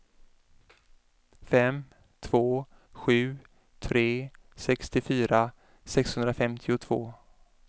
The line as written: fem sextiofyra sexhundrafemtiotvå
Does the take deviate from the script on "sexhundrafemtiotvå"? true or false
false